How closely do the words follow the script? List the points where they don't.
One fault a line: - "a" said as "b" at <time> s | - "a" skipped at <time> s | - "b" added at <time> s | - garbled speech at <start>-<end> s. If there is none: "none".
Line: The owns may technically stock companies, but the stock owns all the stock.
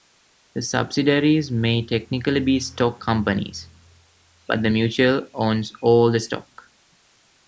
- "owns" said as "subsidiaries" at 0.6 s
- "be" added at 2.4 s
- "stock" said as "mutual" at 4.7 s